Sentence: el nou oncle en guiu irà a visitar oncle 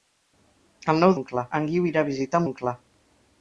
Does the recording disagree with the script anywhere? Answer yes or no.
no